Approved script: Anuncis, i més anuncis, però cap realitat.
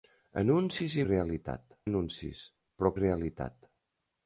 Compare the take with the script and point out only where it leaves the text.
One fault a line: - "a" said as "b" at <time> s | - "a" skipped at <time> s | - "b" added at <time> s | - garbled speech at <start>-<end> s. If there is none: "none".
- "més" said as "realitat" at 1.1 s
- "cap" skipped at 2.9 s